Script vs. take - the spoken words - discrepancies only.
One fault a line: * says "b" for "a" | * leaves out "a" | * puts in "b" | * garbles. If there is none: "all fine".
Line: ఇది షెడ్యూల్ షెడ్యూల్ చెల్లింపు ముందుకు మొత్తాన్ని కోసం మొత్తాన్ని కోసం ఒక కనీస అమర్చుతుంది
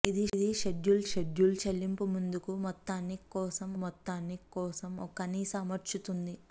all fine